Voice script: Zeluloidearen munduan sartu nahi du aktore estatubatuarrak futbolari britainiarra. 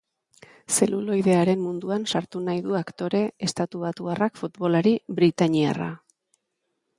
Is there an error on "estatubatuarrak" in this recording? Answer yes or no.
no